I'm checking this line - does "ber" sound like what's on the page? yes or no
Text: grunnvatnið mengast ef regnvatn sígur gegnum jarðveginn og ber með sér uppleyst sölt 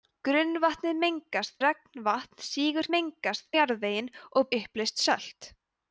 no